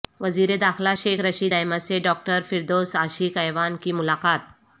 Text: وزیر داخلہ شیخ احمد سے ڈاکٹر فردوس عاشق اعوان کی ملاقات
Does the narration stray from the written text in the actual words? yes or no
yes